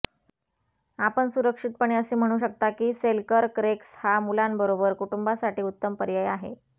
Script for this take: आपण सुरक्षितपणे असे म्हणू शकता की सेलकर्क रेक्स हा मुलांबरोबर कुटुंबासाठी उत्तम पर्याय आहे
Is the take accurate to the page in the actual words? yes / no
yes